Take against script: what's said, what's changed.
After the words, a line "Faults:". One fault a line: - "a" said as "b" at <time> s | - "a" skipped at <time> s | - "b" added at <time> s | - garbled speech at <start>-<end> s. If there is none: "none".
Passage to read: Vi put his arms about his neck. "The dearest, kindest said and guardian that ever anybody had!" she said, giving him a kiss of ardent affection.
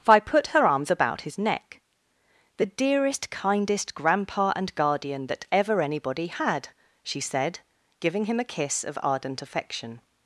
Vi put her arms about his neck. "The dearest, kindest grandpa and guardian that ever anybody had!" she said, giving him a kiss of ardent affection.
Faults:
- "his" said as "her" at 0.5 s
- "said" said as "grandpa" at 3.9 s